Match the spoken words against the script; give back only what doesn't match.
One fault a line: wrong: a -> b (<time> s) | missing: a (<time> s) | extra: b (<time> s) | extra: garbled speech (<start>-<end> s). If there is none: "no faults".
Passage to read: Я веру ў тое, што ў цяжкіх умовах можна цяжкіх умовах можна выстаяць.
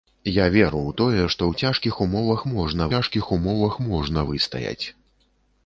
no faults